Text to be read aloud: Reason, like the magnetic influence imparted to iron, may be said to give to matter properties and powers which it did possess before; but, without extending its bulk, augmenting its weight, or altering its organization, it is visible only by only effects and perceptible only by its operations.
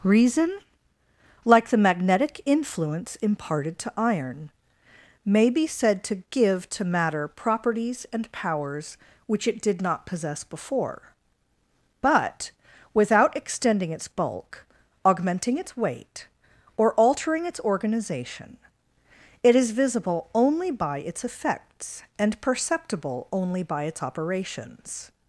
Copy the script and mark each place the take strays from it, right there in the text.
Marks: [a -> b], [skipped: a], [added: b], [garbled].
Reason, like the magnetic influence imparted to iron, may be said to give to matter properties and powers which it did [added: not] possess before; but, without extending its bulk, augmenting its weight, or altering its organization, it is visible only by [only -> its] effects and perceptible only by its operations.